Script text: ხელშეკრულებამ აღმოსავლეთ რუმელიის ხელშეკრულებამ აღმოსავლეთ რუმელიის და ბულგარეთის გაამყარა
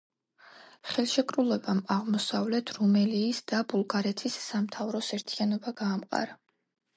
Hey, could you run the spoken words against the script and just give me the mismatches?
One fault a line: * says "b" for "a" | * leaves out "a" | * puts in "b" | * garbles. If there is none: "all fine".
* says "და ბულგარეთის სამთავროს ერთიანობა" for "ხელშეკრულებამ აღმოსავლეთ რუმელიის და ბულგარეთის"